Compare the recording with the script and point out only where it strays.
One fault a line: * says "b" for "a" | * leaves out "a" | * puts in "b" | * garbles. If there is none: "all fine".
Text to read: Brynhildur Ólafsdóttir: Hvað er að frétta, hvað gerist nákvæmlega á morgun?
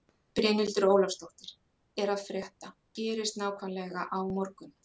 * leaves out "Hvað"
* leaves out "hvað"